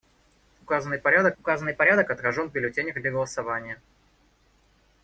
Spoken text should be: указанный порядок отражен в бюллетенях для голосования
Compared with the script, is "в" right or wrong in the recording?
right